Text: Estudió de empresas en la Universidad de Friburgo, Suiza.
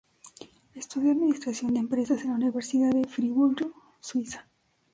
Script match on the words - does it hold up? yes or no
no